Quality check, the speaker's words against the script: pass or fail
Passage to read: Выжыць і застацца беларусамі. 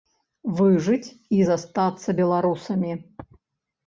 pass